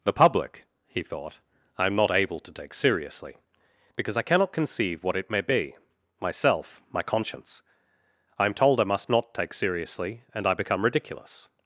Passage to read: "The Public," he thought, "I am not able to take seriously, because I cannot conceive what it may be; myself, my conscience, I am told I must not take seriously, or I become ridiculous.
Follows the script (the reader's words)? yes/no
no